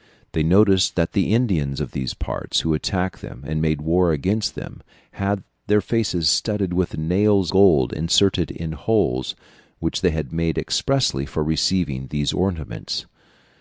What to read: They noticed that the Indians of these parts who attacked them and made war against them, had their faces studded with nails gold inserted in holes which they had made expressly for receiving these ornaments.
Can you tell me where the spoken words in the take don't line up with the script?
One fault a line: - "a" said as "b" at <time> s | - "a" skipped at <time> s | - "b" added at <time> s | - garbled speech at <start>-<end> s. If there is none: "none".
none